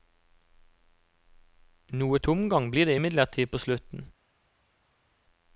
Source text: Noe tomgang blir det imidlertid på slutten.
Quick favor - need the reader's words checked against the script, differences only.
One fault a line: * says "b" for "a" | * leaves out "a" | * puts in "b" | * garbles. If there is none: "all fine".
all fine